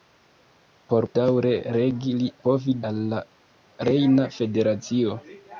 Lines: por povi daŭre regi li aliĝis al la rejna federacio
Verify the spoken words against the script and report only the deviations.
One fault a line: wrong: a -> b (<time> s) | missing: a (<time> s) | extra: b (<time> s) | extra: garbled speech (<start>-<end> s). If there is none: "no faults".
missing: povi (1.1 s)
wrong: aliĝis -> povi (2.5 s)